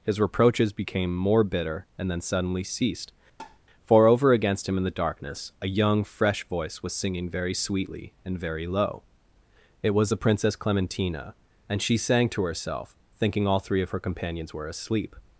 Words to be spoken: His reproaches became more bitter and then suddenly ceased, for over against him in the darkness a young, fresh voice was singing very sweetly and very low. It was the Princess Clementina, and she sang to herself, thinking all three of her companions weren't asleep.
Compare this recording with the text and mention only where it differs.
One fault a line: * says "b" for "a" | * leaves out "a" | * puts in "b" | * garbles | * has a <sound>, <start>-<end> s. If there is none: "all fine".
* has a tap, 3.4-3.6 s
* says "were" for "weren't"